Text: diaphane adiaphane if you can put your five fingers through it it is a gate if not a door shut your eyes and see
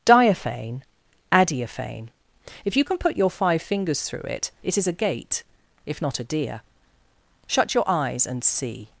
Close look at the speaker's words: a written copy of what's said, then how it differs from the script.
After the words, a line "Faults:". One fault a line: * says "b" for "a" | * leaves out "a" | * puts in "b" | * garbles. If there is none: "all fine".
diaphane adiaphane if you can put your five fingers through it it is a gate if not a deer shut your eyes and see
Faults:
* says "deer" for "door"